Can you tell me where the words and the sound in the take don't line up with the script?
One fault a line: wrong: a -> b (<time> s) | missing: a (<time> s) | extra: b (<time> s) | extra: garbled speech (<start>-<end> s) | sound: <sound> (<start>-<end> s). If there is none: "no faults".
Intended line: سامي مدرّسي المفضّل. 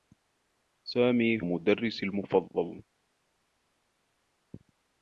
no faults